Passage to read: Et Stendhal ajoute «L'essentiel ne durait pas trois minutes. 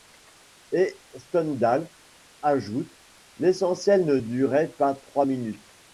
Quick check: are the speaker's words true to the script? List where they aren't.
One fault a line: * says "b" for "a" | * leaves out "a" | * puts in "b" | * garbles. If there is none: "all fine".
all fine